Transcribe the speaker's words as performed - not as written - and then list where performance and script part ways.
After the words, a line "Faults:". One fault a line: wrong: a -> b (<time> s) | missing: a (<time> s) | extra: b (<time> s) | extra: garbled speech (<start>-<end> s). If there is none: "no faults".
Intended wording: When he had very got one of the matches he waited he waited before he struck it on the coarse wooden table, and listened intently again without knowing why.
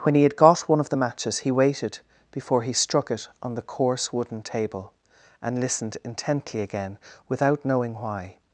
When he had got one of the matches he waited before he struck it on the coarse wooden table, and listened intently again without knowing why.
Faults:
missing: very (0.3 s)
missing: he waited (2.0 s)